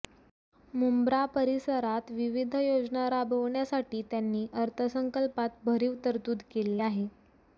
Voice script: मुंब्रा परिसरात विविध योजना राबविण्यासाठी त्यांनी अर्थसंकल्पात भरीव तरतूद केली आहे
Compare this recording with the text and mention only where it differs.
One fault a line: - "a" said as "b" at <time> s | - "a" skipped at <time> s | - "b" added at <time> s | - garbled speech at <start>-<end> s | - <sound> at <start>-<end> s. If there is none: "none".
none